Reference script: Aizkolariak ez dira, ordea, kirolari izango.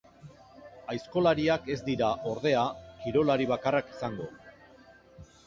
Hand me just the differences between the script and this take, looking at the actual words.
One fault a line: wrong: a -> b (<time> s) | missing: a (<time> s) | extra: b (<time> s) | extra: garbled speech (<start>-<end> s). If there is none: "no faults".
extra: bakarrak (3.5 s)